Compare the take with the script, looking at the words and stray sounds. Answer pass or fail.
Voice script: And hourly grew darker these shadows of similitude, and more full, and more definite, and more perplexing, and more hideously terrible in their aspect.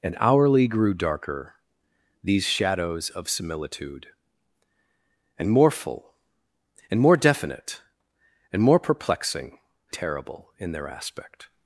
fail